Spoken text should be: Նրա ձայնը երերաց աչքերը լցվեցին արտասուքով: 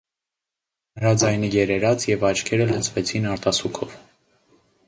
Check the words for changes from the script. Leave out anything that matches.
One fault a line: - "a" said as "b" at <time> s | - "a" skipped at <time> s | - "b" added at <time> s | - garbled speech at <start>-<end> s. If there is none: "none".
- "և" added at 2.1 s